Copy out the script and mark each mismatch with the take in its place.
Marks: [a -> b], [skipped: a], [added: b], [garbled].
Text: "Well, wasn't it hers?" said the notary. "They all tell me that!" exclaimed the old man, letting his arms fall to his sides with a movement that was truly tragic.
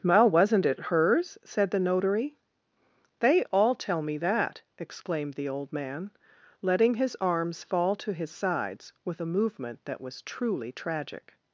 "Well, wasn't it hers?" said the notary. "They all tell me that!" exclaimed the old man, letting his arms fall to his sides with a movement that was truly tragic.